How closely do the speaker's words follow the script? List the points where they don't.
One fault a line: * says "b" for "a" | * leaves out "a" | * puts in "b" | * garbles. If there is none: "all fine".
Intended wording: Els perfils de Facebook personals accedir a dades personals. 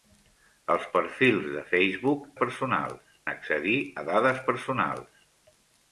all fine